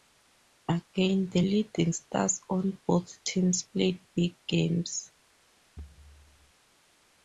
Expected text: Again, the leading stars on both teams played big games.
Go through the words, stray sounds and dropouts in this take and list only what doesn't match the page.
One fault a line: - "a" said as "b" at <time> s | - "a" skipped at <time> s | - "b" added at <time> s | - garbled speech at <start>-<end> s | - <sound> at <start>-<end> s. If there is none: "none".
- thud at 5.8-6.5 s